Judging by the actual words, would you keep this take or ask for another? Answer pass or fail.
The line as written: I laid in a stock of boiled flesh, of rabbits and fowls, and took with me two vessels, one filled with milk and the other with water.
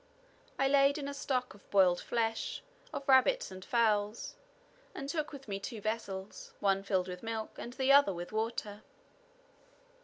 pass